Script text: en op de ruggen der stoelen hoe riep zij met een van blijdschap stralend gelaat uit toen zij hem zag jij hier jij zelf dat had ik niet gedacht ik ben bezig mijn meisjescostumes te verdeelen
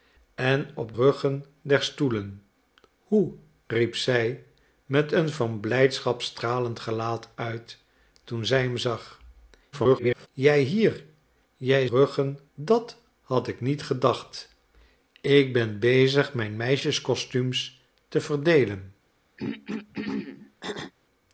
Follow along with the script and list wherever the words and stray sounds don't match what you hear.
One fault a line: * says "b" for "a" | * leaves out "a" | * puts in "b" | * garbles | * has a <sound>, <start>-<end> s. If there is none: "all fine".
* leaves out "de"
* garbles
* says "ruggen" for "zelf"
* has a throat clearing, 19.4-20.9 s